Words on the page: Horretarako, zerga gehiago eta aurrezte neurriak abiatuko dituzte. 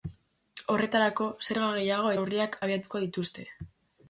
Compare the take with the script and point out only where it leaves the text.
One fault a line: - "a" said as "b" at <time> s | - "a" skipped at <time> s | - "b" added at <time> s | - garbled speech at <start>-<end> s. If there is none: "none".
- "eta aurrezte" skipped at 2.1 s